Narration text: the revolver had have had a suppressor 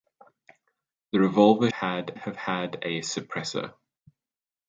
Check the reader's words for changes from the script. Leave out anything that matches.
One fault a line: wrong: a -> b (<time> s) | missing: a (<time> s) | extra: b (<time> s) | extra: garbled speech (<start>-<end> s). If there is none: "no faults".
no faults